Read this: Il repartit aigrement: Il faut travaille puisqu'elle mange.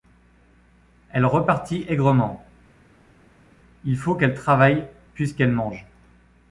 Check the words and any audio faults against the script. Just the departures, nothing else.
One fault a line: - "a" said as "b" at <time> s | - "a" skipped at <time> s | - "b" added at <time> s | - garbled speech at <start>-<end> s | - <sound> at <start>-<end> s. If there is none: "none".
- "Il" said as "Elle" at 1.1 s
- "qu'elle" added at 4.1 s